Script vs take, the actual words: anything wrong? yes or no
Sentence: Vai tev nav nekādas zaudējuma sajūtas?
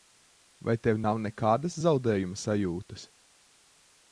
no